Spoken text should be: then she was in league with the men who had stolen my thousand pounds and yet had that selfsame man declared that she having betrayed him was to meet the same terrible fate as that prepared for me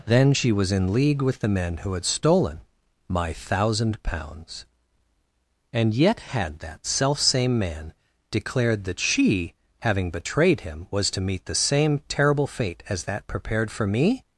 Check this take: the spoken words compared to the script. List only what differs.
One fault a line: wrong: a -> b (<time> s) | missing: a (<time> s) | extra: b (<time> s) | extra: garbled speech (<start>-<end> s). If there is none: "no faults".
no faults